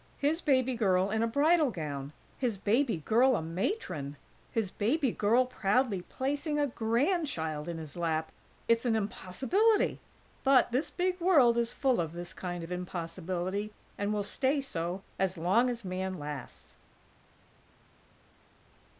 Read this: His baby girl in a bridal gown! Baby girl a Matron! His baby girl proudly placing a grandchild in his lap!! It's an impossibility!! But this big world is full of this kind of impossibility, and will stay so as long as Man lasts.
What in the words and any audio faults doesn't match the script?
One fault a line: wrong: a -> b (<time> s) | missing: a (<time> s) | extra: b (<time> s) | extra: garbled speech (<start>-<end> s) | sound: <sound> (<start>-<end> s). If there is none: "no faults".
extra: His (2.4 s)